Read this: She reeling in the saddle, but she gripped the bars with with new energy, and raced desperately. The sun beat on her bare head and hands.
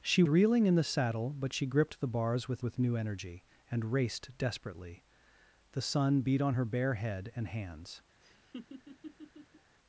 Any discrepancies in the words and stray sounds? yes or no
yes